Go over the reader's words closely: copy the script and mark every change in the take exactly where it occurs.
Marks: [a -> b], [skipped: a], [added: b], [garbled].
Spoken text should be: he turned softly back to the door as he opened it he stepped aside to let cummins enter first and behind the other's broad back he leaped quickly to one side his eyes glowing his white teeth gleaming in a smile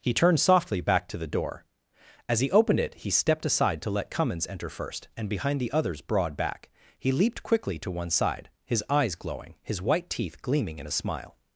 he turned softly back to the door as he opened it he stepped aside to let cummins enter first and behind the other's broad back he leaped quickly to one side his eyes glowing his white teeth gleaming in a smile